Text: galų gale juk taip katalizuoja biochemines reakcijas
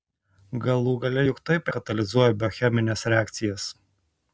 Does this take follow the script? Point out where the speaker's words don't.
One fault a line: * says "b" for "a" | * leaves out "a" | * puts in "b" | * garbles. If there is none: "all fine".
all fine